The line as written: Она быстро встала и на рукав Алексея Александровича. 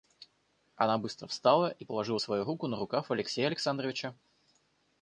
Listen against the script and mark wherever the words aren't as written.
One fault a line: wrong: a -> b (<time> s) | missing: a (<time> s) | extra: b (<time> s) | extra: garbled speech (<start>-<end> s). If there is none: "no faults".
extra: положила свою руку (1.8 s)